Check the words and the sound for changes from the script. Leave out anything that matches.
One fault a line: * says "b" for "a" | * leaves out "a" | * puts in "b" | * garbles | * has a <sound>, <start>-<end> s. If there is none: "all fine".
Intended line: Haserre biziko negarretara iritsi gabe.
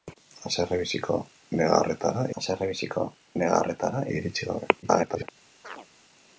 * puts in "haserre biziko negarretara"
* garbles
* has a chirp, 5.6-5.9 s